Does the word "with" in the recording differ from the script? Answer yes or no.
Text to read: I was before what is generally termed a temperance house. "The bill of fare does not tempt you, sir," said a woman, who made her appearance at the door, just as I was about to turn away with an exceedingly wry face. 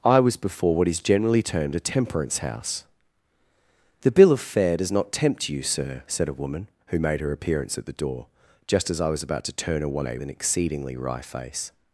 yes